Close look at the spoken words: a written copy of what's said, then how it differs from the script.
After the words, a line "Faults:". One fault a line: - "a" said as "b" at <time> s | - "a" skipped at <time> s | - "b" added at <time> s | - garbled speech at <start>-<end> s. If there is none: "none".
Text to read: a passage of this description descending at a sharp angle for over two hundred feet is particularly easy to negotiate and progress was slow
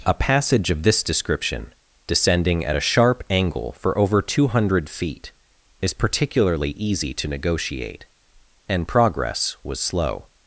a passage of this description descending at a sharp angle for over two hundred feet is particularly easy to negotiate and progress was slow
Faults:
none